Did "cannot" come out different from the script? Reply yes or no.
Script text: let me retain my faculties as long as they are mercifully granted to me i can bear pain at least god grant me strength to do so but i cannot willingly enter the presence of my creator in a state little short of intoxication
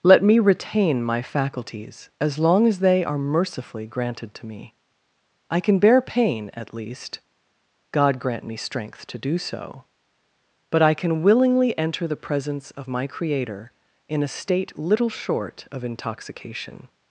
yes